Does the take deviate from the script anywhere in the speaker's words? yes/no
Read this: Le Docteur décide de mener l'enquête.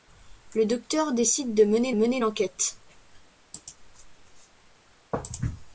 yes